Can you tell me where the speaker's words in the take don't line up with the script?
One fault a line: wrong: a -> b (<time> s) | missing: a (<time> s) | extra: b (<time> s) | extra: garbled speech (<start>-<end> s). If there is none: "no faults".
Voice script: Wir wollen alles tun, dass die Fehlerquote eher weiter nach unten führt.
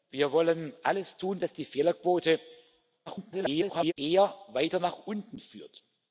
extra: garbled speech (3.1-3.9 s)